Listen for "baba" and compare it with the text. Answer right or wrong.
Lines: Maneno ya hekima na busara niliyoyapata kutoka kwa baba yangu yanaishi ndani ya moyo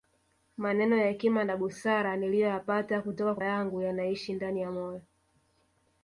wrong